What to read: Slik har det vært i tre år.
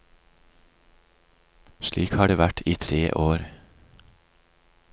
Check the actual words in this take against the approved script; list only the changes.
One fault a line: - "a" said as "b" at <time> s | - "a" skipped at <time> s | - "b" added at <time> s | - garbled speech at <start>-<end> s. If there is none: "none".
none